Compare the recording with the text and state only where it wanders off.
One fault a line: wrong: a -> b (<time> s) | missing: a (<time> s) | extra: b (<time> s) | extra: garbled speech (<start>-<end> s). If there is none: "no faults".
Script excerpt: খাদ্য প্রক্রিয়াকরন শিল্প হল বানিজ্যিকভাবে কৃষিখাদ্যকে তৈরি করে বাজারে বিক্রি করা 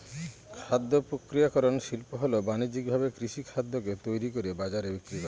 no faults